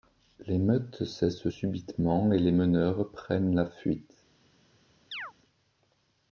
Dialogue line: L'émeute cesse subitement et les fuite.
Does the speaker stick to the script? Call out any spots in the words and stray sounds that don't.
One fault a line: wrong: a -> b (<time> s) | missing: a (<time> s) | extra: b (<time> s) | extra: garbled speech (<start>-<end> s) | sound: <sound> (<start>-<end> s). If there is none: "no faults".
extra: meneurs prennent la (2.5 s)
sound: chirp (5.1-5.3 s)